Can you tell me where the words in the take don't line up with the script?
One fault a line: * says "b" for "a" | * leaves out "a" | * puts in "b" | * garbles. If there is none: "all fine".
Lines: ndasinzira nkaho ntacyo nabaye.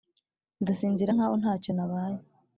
all fine